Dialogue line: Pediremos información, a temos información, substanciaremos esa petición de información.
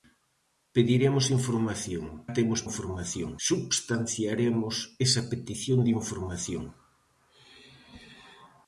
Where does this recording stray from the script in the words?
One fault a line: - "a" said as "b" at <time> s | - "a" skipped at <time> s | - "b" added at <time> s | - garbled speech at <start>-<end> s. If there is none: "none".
none